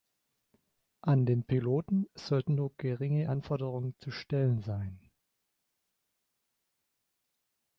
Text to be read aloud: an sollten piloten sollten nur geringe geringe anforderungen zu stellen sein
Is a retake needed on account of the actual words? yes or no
yes